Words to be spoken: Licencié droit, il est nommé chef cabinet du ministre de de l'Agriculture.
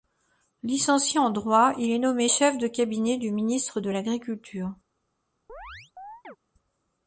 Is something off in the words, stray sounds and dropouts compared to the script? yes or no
yes